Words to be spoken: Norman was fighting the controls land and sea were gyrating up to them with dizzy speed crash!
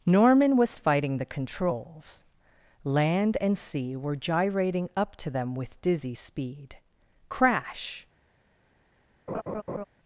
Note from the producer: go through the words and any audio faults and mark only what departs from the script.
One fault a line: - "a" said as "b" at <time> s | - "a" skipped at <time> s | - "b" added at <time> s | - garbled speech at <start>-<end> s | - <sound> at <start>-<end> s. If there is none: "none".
- laugh at 9.3-9.8 s